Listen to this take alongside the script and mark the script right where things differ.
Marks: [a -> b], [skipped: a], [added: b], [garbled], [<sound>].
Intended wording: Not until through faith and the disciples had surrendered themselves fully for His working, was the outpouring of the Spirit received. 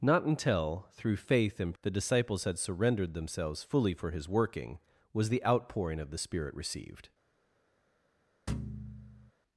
Not until through faith and the disciples had surrendered themselves fully for His working, was the outpouring of the Spirit received. [thud]